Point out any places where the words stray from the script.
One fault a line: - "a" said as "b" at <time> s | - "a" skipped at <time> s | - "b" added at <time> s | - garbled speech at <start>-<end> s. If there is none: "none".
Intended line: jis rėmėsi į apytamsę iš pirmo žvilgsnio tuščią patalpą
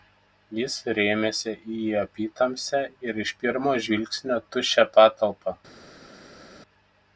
- "ir" added at 3.1 s